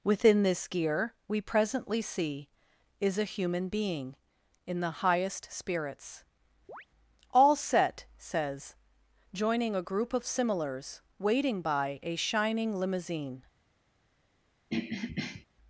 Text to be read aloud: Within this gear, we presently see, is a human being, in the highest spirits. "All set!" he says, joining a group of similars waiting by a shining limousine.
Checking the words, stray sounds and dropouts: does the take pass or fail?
fail